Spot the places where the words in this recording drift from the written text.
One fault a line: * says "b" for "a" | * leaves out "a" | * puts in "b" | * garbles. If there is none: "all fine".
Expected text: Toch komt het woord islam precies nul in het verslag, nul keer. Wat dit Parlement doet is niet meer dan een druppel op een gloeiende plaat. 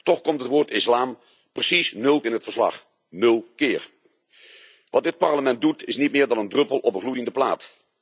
all fine